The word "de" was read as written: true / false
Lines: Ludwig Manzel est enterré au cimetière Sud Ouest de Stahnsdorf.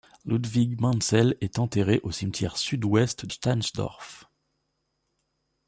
false